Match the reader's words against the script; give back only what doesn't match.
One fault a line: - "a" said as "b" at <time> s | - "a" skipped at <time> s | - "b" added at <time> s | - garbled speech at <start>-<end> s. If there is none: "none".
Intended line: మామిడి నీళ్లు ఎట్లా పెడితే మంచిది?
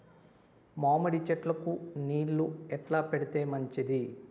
- "చెట్లకు" added at 1.2 s